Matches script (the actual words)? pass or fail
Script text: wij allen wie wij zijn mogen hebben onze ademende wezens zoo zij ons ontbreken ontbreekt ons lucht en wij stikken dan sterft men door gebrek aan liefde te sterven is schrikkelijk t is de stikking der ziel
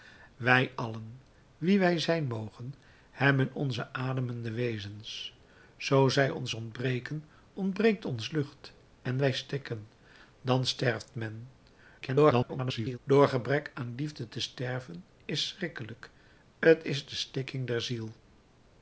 fail